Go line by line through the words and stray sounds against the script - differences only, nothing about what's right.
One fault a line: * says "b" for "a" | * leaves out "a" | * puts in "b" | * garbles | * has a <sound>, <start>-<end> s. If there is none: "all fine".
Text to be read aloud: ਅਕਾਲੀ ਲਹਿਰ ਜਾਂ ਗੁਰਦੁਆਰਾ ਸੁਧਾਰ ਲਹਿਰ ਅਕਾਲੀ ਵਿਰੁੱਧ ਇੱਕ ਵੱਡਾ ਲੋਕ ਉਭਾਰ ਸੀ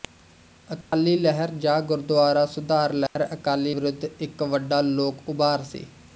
* has a dropout, 0.8-0.9 s
* has a dropout, 3.1-3.2 s